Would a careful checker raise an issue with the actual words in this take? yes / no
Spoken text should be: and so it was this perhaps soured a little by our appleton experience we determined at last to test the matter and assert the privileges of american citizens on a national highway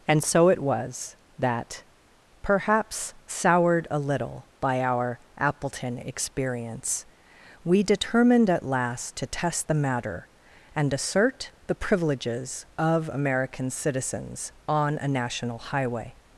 yes